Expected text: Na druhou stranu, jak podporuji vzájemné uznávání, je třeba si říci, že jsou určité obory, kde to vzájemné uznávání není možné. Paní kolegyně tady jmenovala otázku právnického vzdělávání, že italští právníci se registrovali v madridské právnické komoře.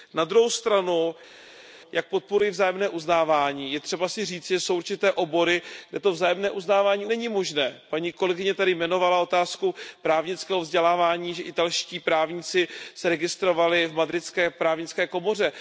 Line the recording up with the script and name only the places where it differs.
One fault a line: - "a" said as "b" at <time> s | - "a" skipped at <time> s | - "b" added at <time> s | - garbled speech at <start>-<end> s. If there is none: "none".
none